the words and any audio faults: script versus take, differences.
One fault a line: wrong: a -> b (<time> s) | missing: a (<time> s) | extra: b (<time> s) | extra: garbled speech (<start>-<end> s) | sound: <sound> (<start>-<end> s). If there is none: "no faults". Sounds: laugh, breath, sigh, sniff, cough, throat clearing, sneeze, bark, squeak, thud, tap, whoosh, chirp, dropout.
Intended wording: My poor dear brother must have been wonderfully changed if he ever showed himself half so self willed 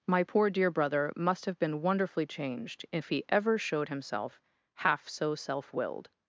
no faults